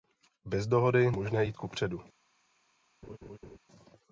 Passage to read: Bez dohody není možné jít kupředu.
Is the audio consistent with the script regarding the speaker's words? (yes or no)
no